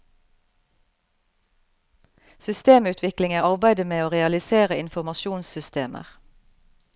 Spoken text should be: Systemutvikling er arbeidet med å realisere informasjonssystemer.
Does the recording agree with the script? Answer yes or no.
yes